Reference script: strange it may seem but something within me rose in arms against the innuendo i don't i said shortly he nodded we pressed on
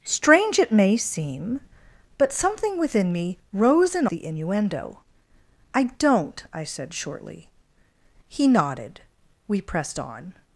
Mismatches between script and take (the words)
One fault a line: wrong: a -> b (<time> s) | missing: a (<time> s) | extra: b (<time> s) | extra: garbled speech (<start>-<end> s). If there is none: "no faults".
missing: arms against (4.1 s)